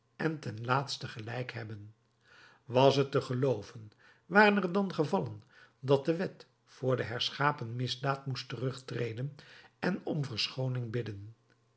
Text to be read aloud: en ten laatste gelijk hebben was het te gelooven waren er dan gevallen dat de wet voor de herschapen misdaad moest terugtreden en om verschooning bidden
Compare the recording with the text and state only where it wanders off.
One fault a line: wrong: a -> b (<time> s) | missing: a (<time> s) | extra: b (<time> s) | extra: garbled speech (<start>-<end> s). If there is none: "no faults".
no faults